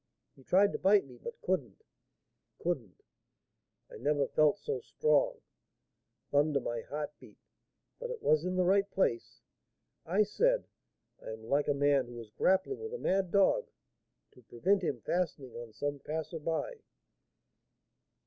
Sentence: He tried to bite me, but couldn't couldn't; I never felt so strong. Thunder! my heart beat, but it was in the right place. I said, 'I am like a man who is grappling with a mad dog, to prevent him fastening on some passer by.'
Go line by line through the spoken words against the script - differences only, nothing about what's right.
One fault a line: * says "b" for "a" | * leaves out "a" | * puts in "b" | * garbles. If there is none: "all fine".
all fine